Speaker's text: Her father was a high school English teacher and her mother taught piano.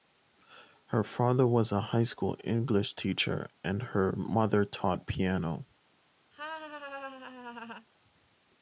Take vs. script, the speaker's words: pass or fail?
pass